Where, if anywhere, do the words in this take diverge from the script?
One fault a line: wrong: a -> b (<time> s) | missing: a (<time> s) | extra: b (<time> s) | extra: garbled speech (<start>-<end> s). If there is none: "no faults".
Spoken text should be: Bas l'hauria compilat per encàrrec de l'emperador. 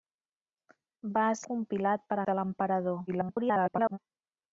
missing: l'hauria (1.4 s)
missing: encàrrec (2.2 s)
extra: garbled speech (3.1-4.0 s)